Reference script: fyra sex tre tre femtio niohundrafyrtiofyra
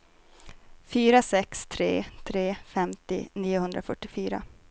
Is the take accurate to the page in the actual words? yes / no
yes